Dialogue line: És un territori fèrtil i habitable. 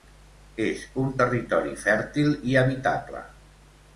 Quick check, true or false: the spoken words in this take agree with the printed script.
true